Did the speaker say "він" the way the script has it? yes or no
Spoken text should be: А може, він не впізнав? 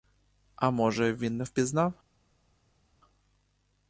yes